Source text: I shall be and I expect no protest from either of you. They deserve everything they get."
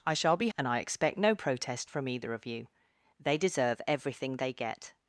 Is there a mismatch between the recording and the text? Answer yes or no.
no